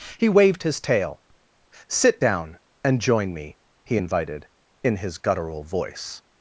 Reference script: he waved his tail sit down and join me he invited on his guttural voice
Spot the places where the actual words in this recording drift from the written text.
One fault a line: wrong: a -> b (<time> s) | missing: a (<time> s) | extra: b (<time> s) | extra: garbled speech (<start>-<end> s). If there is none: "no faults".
wrong: on -> in (4.8 s)